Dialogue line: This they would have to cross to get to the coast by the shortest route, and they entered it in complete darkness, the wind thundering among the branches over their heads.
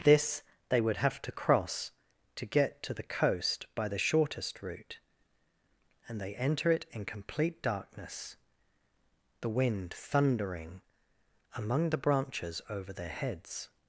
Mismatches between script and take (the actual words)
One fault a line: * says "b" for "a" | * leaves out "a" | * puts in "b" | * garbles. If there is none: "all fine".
* says "enter" for "entered"